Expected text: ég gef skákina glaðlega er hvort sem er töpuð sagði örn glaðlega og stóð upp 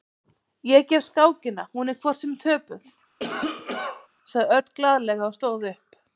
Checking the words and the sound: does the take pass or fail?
fail